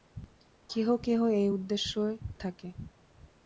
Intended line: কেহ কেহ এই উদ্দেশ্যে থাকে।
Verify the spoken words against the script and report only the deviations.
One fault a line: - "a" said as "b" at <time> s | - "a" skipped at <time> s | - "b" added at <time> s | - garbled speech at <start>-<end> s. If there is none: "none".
none